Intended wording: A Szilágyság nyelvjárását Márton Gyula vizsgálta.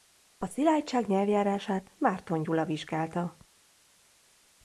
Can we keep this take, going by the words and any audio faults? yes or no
yes